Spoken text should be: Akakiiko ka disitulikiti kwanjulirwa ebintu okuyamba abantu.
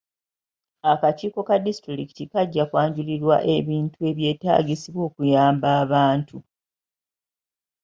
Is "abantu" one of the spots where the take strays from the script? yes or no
no